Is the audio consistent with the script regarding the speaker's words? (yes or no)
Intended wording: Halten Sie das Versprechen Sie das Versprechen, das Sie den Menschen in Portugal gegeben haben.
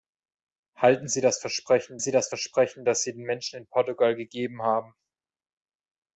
yes